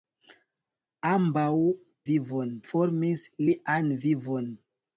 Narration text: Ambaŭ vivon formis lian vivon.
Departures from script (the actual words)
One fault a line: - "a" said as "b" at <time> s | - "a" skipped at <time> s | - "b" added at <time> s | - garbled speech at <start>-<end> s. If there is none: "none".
none